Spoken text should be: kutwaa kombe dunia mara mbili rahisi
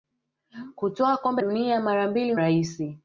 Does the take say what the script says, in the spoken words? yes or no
yes